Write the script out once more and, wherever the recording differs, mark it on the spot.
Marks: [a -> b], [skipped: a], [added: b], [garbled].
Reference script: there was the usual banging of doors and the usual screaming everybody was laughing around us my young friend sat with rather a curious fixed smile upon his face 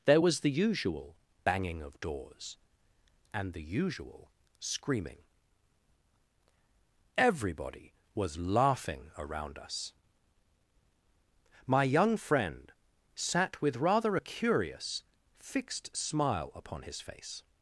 there was the usual banging of doors and the usual screaming everybody was laughing around us my young friend sat with rather a curious fixed smile upon his face